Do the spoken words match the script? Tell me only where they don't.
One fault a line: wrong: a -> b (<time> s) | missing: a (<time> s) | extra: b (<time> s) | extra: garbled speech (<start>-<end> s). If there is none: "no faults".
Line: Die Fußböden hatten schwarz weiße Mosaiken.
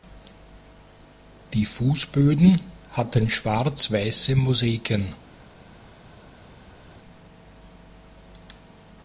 no faults